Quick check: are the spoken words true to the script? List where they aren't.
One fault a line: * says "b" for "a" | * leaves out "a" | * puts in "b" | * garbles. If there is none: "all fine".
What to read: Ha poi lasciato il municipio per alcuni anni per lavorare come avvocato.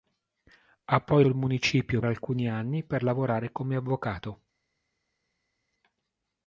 * leaves out "lasciato"
* leaves out "per"